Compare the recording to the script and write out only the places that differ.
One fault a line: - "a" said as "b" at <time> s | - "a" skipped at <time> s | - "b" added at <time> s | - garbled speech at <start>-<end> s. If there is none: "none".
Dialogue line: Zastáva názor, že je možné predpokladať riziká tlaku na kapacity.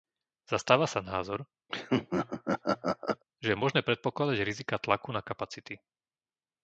- "sa" added at 0.9 s